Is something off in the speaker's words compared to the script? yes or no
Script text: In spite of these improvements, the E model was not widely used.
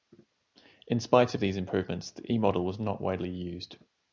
no